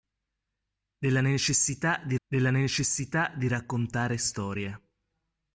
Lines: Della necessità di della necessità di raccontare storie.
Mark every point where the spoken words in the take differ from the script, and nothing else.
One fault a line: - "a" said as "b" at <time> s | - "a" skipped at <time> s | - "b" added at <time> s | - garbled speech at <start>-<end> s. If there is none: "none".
none